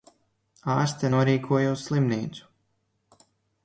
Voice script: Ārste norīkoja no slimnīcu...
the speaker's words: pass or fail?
fail